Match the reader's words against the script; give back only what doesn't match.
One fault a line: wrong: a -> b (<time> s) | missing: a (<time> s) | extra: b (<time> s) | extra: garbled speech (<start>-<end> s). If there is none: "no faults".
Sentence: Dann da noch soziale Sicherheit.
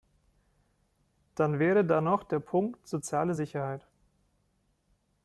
extra: wäre (1.6 s)
extra: der Punkt (2.2 s)